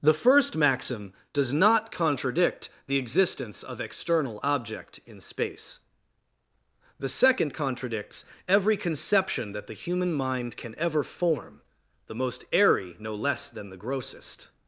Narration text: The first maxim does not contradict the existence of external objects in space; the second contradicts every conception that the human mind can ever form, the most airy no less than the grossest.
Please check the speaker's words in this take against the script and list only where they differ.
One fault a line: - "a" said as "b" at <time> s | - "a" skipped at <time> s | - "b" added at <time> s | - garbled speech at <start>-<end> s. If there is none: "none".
- "objects" said as "object" at 4.4 s